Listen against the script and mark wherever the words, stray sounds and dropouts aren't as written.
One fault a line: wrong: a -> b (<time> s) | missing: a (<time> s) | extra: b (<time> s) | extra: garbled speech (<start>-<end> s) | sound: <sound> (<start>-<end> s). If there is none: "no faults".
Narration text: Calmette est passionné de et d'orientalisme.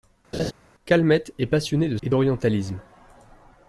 sound: laugh (0.3-0.5 s)